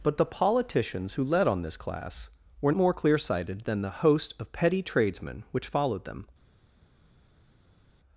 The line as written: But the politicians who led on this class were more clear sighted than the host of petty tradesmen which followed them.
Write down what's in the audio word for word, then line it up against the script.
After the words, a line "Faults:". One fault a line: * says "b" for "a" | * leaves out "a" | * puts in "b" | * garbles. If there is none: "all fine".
But the politicians who led on this class were more clear sighted than the host of petty tradesmen which followed them.
Faults:
all fine